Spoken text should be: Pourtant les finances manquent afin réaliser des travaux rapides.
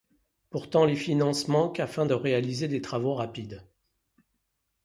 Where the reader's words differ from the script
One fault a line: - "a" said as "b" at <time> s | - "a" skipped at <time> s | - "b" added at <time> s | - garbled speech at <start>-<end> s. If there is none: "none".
- "de" added at 2.0 s